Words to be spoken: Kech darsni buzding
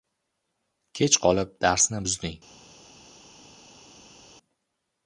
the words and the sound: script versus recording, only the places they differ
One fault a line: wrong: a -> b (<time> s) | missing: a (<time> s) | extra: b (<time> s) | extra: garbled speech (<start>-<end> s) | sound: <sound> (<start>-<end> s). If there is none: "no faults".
extra: qolib (1.2 s)